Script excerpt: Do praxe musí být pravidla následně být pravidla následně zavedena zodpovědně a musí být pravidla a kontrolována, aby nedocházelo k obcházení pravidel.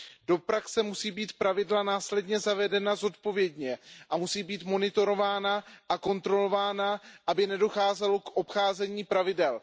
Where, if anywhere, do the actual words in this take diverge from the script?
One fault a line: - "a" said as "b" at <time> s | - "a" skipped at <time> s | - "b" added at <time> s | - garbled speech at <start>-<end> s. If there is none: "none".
- "být pravidla následně" skipped at 2.4 s
- "pravidla" said as "monitorována" at 4.6 s